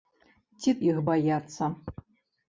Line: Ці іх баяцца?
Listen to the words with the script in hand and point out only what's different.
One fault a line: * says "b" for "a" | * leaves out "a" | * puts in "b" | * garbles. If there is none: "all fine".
all fine